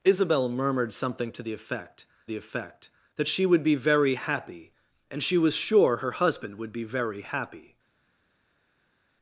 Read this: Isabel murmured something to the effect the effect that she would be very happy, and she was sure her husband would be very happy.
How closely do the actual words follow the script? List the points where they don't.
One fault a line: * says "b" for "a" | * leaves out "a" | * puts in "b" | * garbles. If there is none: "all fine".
all fine